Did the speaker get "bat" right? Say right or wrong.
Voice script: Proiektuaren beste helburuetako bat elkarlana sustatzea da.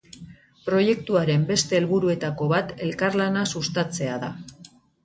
right